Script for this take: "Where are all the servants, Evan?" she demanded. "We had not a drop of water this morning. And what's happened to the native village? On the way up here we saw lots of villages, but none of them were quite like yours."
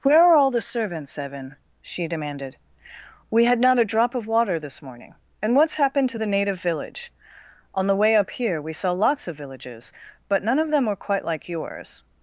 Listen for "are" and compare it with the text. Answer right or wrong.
right